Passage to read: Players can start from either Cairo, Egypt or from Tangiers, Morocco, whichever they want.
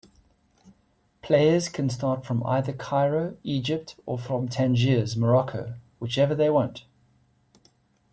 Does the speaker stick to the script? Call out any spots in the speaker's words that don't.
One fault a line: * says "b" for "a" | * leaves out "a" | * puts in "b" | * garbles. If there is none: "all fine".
all fine